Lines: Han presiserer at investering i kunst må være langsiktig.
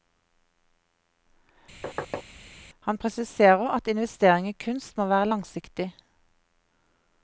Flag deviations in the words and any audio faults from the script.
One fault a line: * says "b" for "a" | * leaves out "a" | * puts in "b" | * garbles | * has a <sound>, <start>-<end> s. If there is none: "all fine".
* has a thud, 1.8-2.2 s